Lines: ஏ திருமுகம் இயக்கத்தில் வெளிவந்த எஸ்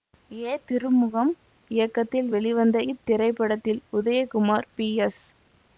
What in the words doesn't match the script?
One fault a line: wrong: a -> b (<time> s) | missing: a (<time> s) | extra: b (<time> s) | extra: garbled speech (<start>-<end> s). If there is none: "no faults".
extra: இத்திரைப்படத்தில் உதயகுமார் பி (2.9 s)